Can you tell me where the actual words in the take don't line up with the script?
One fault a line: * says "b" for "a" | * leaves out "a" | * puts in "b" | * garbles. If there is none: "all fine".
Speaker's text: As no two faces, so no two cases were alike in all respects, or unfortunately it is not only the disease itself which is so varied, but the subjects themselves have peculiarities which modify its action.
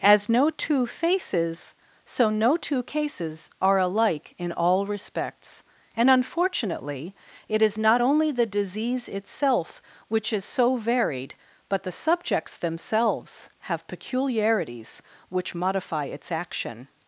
* says "are" for "were"
* says "and" for "or"